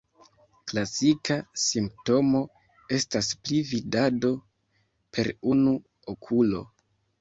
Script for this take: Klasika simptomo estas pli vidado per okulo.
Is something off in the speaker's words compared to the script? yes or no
yes